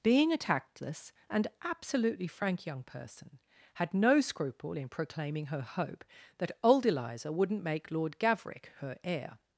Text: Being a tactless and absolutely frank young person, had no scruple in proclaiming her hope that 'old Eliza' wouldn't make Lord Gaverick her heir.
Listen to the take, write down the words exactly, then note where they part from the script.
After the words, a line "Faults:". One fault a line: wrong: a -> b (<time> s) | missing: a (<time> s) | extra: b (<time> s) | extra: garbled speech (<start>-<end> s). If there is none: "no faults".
Being a tactless and absolutely frank young person, had no scruple in proclaiming her hope that 'old Eliza' wouldn't make Lord Gaverick her heir.
Faults:
no faults